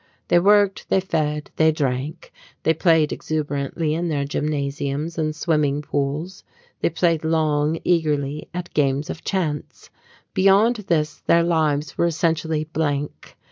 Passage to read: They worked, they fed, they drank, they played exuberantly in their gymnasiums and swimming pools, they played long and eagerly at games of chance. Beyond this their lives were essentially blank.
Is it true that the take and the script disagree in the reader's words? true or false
true